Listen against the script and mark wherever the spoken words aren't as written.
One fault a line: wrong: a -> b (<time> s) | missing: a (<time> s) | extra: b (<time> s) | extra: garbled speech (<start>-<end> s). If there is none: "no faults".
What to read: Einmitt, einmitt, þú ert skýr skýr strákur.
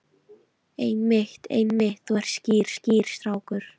no faults